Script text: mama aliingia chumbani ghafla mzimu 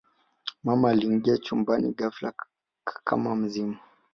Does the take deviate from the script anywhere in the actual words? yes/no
yes